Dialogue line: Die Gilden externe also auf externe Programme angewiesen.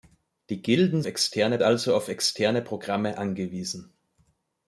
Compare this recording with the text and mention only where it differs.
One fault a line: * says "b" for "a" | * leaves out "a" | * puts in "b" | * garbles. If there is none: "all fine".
all fine